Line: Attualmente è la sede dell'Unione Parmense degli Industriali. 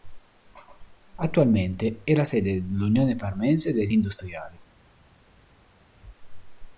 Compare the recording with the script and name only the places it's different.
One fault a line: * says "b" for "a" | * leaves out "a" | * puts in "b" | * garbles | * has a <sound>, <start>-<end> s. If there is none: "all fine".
all fine